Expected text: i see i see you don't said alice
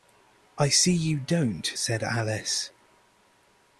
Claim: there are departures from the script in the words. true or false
true